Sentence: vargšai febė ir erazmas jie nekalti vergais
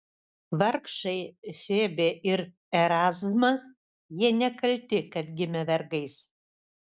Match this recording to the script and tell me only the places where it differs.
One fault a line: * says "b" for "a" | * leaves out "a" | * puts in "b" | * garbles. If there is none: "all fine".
* puts in "kad gimė"